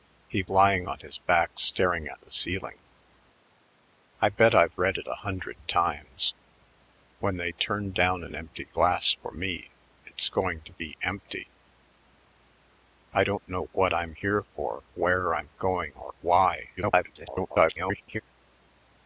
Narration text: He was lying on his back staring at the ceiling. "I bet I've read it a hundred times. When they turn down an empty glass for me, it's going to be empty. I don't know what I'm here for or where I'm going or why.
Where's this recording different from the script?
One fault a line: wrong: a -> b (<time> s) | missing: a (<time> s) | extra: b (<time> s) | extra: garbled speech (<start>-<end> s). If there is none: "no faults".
missing: was (0.4 s)
missing: or (14.8 s)
extra: garbled speech (16.8-18.2 s)